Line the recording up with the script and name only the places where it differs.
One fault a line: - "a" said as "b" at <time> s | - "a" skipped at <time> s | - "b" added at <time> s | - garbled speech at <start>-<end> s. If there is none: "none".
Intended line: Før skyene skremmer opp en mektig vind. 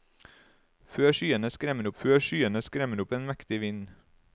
- "før skyene skremmer" added at 2.0 s